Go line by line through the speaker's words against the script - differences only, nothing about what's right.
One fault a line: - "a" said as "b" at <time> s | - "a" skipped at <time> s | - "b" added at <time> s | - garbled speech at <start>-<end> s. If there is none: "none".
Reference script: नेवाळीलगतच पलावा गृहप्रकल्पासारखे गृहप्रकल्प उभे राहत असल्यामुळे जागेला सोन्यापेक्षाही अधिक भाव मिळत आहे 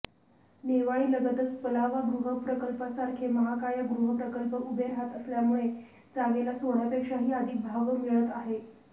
- "महाकाय" added at 3.3 s